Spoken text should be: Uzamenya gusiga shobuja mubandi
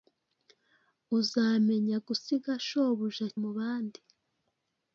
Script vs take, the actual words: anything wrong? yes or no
no